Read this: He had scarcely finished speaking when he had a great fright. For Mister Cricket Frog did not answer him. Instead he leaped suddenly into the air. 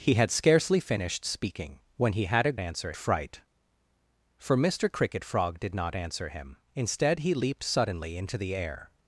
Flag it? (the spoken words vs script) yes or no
yes